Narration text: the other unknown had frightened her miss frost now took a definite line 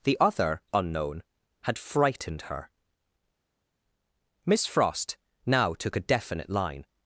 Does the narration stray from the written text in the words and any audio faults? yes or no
no